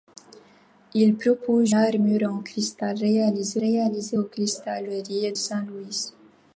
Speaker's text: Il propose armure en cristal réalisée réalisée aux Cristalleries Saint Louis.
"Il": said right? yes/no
yes